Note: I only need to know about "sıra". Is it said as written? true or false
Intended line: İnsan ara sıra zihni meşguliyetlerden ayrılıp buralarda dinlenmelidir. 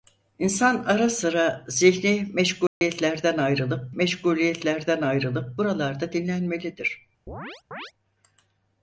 true